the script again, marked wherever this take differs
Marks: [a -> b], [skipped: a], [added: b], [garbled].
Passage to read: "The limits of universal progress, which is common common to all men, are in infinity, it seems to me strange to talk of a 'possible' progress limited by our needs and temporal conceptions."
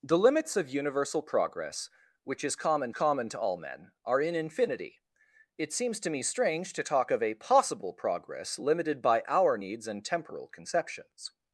"The limits of universal progress, which is common common to all men, are in infinity, it seems to me strange to talk of a 'possible' progress limited by our needs and temporal conceptions."